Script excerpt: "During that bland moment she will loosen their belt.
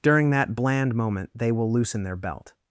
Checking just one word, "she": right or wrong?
wrong